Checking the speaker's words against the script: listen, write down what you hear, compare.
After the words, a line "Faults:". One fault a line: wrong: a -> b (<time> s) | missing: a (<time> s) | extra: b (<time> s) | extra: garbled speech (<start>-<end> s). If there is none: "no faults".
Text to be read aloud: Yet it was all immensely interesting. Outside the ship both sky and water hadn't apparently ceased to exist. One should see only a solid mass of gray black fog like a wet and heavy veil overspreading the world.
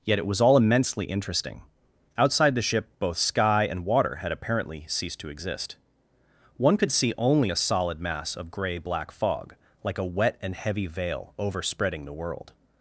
Yet it was all immensely interesting. Outside the ship both sky and water had apparently ceased to exist. One could see only a solid mass of gray black fog like a wet and heavy veil overspreading the world.
Faults:
wrong: hadn't -> had (4.2 s)
wrong: should -> could (6.7 s)